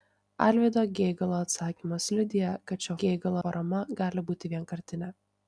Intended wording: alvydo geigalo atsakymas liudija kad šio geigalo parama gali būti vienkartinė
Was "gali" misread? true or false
false